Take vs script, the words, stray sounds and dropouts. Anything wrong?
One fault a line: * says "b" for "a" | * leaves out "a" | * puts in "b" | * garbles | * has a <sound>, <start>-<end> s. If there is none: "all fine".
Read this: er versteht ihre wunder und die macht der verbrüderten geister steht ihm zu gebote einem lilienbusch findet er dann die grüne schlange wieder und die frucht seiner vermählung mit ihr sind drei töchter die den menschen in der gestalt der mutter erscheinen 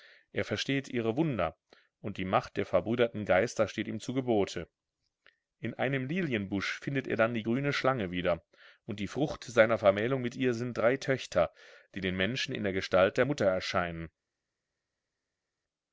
* puts in "in"